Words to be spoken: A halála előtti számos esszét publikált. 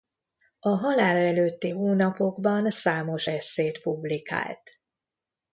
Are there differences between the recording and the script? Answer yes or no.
yes